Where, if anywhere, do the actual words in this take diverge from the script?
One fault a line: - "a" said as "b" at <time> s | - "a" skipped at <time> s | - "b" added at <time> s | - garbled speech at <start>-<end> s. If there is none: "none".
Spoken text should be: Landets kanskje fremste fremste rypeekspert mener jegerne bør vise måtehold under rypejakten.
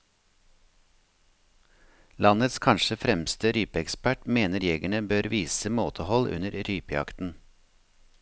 - "fremste" skipped at 3.5 s